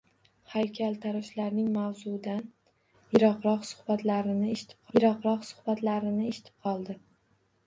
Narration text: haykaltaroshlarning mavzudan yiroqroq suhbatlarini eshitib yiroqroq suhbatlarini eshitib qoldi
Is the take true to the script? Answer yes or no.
yes